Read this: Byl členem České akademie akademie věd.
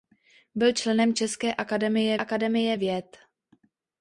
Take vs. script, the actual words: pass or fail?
pass